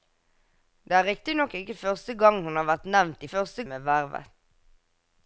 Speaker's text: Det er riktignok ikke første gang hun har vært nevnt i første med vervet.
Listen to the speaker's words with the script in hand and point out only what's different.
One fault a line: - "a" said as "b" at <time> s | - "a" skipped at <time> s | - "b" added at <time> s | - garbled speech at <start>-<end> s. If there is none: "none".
none